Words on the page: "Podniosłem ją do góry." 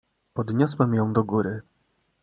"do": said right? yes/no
yes